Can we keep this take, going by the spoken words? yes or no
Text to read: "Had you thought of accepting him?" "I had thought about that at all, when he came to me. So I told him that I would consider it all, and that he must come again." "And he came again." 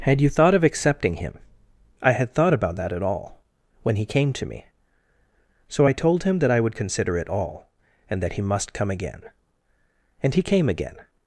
yes